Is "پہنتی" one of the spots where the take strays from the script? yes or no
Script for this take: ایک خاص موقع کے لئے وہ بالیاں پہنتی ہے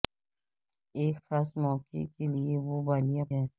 yes